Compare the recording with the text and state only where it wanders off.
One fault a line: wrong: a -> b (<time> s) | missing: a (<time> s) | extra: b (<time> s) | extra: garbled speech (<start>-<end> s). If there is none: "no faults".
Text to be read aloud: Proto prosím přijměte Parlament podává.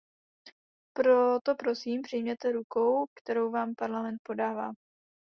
extra: rukou kterou vám (2.5 s)